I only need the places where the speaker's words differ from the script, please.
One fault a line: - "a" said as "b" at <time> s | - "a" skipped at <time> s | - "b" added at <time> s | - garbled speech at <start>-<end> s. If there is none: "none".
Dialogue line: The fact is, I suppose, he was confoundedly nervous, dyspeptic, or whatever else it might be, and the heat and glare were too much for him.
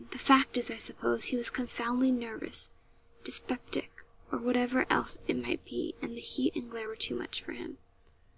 none